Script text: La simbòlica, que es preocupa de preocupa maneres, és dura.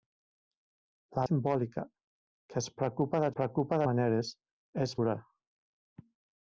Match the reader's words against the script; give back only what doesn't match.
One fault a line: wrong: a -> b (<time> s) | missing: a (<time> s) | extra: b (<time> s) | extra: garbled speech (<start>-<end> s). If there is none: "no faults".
no faults